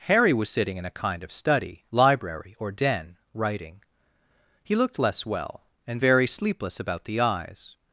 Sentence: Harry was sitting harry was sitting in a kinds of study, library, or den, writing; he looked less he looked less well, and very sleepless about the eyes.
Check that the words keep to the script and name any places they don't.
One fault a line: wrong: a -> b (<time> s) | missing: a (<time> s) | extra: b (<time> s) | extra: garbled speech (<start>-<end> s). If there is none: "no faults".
missing: harry was sitting (0.8 s)
wrong: kinds -> kind (1.0 s)
missing: he looked less (5.2 s)